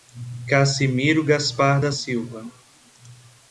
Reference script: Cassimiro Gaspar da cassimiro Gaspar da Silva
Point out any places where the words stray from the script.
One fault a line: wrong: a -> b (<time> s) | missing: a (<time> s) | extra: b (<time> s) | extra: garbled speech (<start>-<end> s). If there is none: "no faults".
missing: cassimiro Gaspar da (1.9 s)